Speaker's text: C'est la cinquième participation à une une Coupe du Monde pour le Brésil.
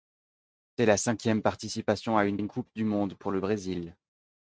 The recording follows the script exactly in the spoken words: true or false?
true